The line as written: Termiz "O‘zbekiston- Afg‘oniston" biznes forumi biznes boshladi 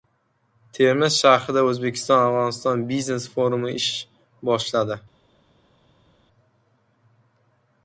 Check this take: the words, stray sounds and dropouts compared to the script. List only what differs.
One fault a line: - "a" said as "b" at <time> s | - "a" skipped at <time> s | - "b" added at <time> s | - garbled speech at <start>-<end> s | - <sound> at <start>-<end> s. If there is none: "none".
- "shahrida" added at 1.2 s
- "biznes" said as "ish" at 3.8 s